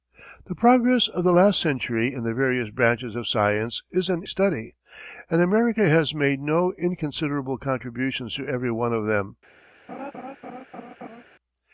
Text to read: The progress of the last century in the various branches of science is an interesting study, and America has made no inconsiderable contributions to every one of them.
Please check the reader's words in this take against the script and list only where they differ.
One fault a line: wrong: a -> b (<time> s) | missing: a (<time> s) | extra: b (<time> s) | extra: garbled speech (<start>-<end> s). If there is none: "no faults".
missing: interesting (4.2 s)